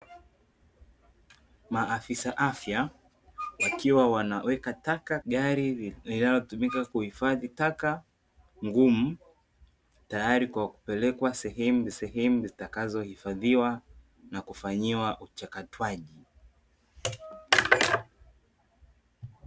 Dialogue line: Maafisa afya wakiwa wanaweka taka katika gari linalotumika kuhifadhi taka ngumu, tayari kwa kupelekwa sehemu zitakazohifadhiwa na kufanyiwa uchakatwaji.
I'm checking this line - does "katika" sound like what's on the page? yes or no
no